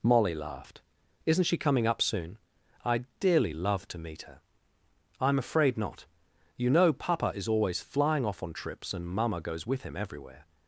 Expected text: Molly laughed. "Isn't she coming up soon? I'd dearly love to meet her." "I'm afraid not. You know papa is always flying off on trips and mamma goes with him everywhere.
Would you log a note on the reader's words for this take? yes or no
no